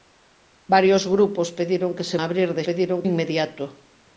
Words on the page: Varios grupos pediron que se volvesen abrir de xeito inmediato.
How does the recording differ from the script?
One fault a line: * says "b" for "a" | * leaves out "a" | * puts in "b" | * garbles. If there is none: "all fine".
* leaves out "volvesen"
* says "pediron" for "xeito"